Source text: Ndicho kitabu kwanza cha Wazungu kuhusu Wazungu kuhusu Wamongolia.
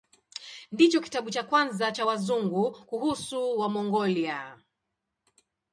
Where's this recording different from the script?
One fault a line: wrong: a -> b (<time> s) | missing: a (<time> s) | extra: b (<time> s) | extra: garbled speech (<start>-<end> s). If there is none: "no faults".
extra: cha (1.3 s)
missing: Wazungu kuhusu (3.6 s)